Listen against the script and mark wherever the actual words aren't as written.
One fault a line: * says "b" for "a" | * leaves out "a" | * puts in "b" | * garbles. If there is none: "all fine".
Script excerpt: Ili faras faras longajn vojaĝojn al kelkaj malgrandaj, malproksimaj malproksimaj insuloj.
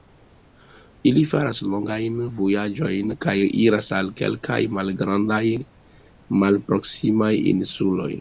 * leaves out "faras"
* puts in "kaj iras"
* leaves out "malproksimaj"